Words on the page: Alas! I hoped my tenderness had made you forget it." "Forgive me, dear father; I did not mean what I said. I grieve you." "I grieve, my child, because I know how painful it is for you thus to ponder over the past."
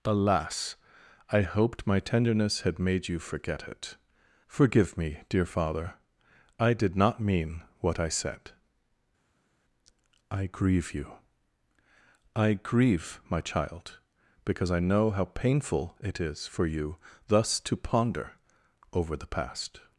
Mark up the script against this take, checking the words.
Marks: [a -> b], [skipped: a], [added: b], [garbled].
Alas! I hoped my tenderness had made you forget it." "Forgive me, dear father; I did not mean what I said. I grieve you." "I grieve, my child, because I know how painful it is for you thus to ponder over the past."